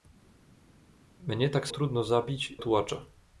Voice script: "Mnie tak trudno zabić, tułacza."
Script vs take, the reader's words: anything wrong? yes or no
no